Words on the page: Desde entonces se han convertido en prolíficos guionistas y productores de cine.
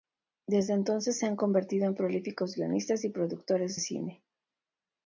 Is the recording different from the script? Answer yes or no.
yes